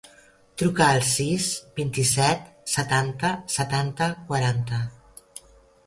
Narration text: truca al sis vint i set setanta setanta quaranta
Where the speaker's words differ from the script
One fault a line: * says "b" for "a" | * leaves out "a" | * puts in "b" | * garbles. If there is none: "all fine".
all fine